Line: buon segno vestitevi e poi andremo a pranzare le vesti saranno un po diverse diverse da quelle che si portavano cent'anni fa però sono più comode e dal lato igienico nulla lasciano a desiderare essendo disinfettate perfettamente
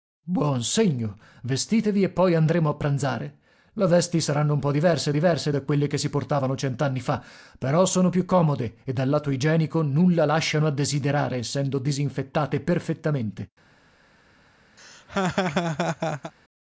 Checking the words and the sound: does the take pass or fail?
fail